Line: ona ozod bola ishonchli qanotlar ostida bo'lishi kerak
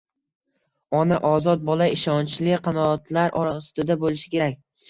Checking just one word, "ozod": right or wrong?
right